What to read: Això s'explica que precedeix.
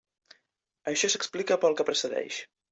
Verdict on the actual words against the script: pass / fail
fail